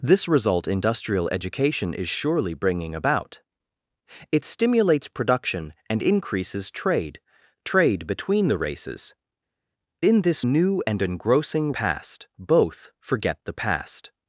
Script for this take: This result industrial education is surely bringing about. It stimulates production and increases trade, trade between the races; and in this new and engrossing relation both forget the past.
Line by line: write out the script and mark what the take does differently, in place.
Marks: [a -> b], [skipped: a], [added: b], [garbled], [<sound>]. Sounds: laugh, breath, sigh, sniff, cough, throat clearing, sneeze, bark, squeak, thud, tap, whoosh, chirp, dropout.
This result industrial education is surely bringing about. It stimulates production and increases trade, trade between the races; [skipped: and] in this new and engrossing [relation -> past] both forget the past.